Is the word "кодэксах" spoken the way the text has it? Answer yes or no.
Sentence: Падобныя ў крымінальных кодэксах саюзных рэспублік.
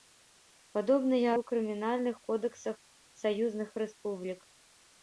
yes